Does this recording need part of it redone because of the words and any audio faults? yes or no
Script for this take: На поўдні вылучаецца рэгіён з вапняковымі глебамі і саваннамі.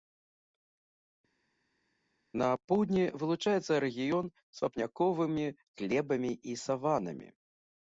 no